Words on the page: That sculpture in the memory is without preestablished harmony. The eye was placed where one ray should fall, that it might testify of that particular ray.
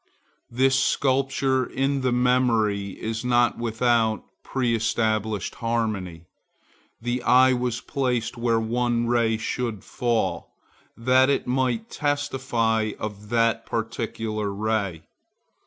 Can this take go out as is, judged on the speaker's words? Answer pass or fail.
fail